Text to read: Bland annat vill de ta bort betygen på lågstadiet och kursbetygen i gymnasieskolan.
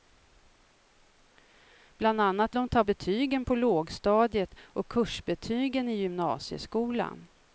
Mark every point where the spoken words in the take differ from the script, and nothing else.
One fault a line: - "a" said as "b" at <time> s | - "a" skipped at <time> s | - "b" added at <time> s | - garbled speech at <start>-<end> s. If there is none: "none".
- "vill" skipped at 2.5 s
- "bort" skipped at 2.8 s